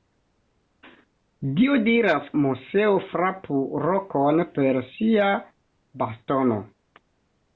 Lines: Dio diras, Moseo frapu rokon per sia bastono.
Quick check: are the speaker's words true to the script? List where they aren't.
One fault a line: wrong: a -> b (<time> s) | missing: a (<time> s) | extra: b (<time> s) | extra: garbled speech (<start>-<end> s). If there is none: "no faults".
no faults